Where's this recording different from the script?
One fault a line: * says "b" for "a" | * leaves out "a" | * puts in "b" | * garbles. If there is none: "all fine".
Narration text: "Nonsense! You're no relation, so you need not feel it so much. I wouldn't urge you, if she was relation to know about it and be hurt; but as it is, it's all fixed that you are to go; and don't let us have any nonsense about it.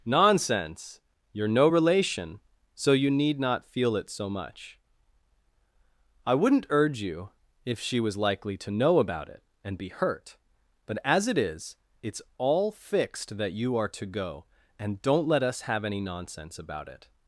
* says "likely" for "relation"